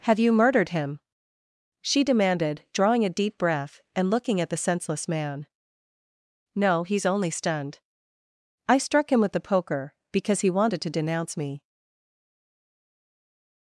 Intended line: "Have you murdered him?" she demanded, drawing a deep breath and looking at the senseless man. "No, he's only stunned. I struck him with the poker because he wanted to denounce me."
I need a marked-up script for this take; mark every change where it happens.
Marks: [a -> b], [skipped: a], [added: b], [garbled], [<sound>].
"Have you murdered him?" she demanded, drawing a deep breath and looking at the senseless man. "No, he's only stunned. I struck him with the poker because he wanted to denounce me."